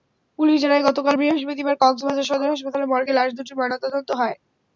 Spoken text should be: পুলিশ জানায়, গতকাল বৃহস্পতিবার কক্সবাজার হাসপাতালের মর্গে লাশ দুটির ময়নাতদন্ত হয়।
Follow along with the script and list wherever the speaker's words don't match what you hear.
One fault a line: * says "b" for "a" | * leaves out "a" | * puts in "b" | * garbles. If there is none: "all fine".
* puts in "সদর"